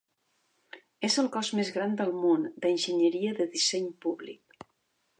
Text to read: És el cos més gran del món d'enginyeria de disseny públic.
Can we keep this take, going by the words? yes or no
yes